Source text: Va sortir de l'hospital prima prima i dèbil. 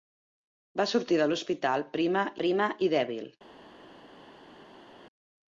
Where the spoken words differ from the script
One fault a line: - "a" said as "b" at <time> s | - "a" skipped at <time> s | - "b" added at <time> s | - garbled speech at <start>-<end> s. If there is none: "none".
none